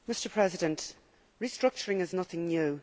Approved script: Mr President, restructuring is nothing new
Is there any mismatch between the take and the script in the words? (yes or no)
no